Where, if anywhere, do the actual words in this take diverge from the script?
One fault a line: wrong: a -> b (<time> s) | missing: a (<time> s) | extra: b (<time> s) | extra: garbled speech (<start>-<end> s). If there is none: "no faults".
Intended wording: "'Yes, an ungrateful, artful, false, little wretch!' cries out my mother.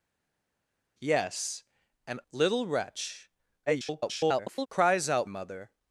missing: ungrateful artful false (2.2 s)
extra: garbled speech (3.7-4.7 s)
missing: my (5.3 s)